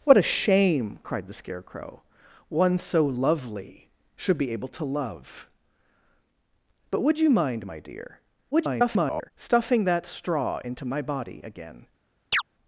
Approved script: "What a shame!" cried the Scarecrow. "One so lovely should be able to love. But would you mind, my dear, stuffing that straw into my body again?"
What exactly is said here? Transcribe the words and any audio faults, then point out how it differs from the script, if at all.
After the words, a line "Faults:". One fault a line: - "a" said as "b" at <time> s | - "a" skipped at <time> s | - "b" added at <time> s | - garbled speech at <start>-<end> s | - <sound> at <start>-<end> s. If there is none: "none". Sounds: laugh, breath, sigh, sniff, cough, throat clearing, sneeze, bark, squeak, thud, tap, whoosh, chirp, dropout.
"What a shame!" cried the Scarecrow. "One so lovely should be able to love. But would you mind, my dear, [garbled] stuffing that straw into my body again?"
Faults:
- garbled speech at 8.5-9.3 s
- chirp at 12.3-12.4 s